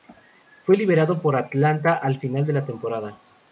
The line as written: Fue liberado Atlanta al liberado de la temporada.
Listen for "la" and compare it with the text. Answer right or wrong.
right